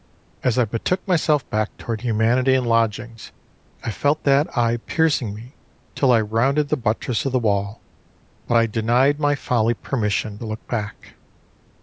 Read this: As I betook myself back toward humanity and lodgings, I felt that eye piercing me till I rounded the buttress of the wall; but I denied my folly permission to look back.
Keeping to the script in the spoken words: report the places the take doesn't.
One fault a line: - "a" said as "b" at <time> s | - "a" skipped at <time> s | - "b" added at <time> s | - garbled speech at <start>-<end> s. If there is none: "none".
none